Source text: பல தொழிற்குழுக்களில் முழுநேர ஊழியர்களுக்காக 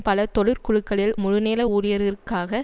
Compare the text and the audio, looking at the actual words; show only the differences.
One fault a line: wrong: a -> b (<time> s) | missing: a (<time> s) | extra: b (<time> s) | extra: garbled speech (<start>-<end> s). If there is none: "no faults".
no faults